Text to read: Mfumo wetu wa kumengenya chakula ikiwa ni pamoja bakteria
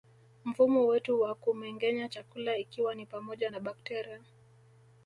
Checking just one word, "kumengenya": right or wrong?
right